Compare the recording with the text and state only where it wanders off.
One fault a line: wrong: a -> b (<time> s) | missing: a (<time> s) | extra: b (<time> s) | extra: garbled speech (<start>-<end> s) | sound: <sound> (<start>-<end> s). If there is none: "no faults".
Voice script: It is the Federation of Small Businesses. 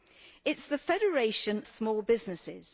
missing: of (1.6 s)